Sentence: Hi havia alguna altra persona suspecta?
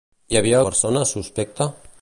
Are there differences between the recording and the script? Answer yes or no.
yes